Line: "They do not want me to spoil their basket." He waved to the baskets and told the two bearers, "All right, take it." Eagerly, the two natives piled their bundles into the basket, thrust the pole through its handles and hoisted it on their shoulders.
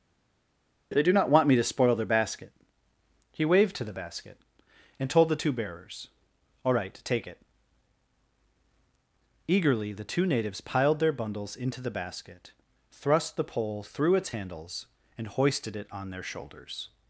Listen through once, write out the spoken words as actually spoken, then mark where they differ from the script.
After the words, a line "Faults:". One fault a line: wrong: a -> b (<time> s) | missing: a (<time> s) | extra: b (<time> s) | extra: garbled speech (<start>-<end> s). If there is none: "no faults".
"They do not want me to spoil their basket." He waved to the basket and told the two bearers, "All right, take it." Eagerly, the two natives piled their bundles into the basket, thrust the pole through its handles and hoisted it on their shoulders.
Faults:
wrong: baskets -> basket (3.9 s)